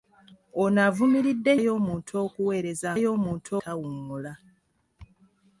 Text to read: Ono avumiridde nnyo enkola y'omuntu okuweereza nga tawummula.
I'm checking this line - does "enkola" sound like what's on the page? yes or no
no